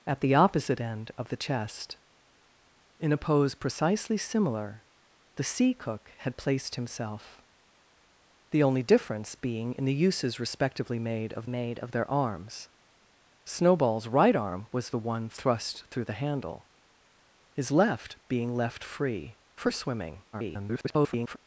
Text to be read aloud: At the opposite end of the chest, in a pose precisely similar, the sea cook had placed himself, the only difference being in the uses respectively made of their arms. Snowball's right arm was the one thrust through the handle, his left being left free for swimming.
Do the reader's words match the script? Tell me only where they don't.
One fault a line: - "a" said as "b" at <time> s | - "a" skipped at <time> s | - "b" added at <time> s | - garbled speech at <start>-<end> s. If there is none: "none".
- "made of" added at 11.5 s
- garbled speech at 20.3-21.4 s